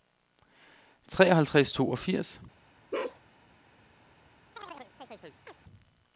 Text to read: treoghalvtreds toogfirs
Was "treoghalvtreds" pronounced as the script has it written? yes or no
yes